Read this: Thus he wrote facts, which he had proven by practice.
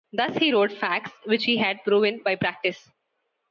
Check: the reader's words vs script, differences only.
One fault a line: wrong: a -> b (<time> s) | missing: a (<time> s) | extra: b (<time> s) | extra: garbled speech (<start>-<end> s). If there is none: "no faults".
no faults